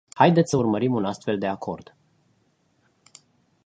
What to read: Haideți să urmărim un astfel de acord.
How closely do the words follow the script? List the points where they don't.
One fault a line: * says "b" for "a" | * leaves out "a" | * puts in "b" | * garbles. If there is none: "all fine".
all fine